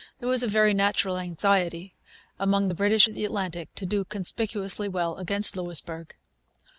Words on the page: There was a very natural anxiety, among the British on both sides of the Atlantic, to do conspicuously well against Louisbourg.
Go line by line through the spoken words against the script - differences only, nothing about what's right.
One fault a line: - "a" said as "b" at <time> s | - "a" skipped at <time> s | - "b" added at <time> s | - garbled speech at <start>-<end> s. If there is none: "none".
- "on both sides" skipped at 3.1 s